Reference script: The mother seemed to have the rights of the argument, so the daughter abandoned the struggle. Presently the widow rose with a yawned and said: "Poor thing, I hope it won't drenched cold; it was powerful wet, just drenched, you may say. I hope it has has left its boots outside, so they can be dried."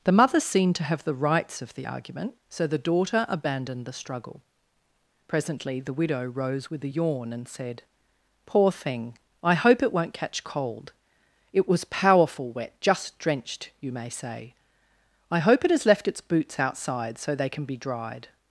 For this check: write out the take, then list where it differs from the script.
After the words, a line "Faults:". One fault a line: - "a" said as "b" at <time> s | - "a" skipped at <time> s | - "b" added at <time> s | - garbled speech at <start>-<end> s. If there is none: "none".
The mother seemed to have the rights of the argument, so the daughter abandoned the struggle. Presently the widow rose with a yawn and said: "Poor thing, I hope it won't catch cold; it was powerful wet, just drenched, you may say. I hope it has left its boots outside, so they can be dried."
Faults:
- "yawned" said as "yawn" at 6.9 s
- "drenched" said as "catch" at 10.1 s
- "has" skipped at 15.9 s